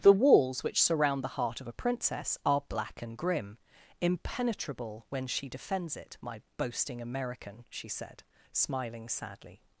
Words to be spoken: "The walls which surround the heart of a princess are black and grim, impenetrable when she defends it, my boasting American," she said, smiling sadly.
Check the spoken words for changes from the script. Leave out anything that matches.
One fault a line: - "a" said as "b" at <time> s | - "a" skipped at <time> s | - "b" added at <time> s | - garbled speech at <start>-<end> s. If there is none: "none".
none